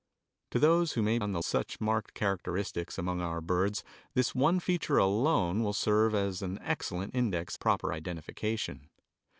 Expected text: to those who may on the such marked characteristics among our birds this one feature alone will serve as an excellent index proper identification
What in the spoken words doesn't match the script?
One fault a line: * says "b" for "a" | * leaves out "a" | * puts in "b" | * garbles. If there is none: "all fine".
all fine